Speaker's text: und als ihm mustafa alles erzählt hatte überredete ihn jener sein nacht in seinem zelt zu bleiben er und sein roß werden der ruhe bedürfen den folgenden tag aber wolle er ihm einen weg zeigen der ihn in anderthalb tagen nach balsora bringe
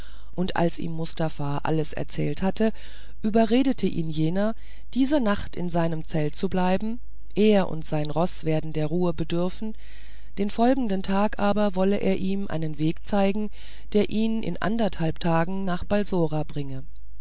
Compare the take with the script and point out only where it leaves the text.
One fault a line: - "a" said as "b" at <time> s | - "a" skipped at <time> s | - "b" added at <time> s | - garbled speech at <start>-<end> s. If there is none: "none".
- "sein" said as "diese" at 5.0 s